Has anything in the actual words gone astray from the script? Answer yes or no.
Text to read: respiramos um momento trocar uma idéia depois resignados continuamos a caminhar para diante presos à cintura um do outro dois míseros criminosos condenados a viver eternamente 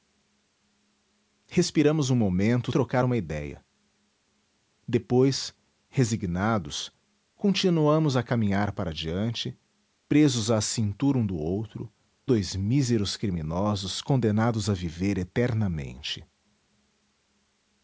no